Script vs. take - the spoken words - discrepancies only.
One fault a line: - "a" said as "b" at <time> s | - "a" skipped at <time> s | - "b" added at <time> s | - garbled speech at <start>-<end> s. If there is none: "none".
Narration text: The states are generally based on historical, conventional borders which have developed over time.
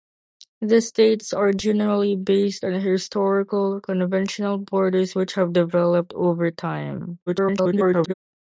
- garbled speech at 7.3-8.1 s